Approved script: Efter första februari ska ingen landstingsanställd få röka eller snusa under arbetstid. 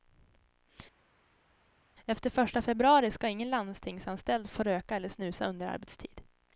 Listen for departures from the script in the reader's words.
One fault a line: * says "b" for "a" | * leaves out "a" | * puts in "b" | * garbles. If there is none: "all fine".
all fine